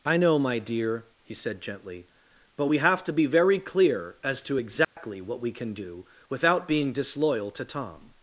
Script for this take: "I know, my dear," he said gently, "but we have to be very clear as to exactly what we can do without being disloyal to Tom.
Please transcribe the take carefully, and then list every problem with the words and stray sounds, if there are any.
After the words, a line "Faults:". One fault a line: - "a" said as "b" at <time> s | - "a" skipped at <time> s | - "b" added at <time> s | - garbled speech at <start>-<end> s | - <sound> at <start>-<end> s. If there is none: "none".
"I know, my dear," he said gently, "but we have to be very clear as to exactly what we can do without being disloyal to Tom.
Faults:
- dropout at 4.8-5.0 s